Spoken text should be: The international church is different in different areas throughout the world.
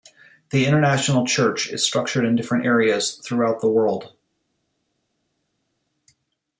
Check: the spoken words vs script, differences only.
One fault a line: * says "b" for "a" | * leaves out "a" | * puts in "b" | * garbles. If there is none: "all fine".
* says "structured" for "different"